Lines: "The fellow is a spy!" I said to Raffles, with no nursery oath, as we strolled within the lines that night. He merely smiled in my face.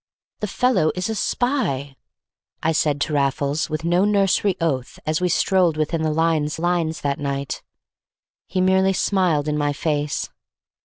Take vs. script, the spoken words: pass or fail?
fail